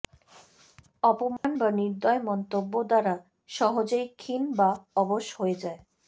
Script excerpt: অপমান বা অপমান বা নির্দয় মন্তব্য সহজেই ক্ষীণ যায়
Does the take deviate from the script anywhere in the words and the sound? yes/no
yes